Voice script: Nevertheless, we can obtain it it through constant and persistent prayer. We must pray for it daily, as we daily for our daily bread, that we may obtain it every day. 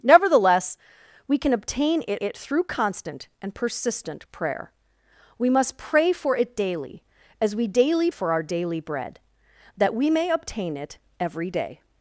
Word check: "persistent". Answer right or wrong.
right